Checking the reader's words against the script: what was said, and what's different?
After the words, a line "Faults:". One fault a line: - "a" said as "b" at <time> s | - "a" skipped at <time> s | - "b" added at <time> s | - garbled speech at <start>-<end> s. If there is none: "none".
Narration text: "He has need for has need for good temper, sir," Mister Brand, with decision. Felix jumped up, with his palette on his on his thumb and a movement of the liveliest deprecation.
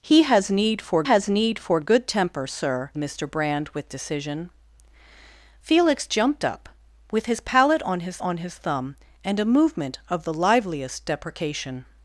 "He has need for has need for good temper, sir," Mister Brand, with decision. Felix jumped up, with his palette on his on his thumb and a movement of the liveliest deprecation.
Faults:
none